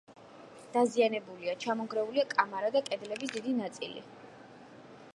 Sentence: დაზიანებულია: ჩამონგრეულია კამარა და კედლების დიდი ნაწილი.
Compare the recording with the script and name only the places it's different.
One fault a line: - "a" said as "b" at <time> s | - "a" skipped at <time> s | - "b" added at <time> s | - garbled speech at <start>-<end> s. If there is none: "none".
none